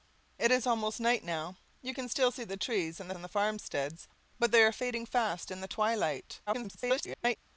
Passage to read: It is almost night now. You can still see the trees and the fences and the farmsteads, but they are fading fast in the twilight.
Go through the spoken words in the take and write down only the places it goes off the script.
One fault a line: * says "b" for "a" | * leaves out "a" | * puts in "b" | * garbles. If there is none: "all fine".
* leaves out "fences"
* garbles